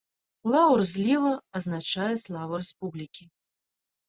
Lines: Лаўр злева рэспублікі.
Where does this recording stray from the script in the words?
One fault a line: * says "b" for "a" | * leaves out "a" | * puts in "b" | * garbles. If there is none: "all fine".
* puts in "азначае славу"